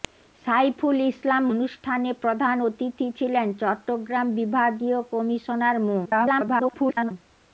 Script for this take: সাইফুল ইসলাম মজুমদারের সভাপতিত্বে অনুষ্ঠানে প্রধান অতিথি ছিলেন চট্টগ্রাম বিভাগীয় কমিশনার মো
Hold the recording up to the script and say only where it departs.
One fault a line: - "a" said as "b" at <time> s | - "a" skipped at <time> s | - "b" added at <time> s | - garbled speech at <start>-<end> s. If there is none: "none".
- "মজুমদারের সভাপতিত্বে" skipped at 1.4 s
- garbled speech at 6.1-7.1 s